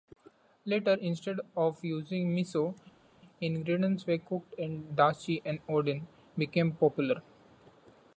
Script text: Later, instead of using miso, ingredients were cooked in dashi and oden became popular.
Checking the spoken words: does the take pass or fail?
pass